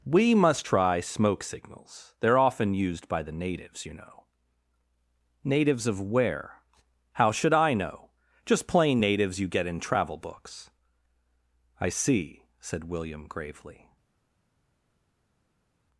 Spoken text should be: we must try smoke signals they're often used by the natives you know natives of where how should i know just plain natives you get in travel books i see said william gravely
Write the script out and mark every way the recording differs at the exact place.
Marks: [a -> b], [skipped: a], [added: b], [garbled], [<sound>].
we must try smoke signals they're often used by the natives you know natives of where how should i know just plain natives you get in travel books i see said william gravely